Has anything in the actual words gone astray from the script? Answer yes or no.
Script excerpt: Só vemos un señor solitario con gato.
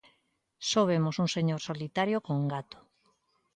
no